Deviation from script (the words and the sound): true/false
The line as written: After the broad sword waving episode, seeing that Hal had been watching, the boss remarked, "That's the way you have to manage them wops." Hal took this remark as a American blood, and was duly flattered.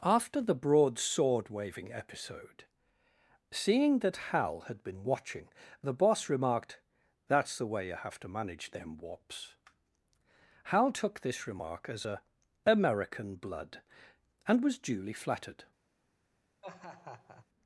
true